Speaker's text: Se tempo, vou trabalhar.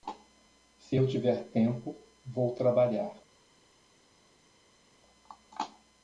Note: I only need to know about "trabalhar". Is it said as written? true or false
true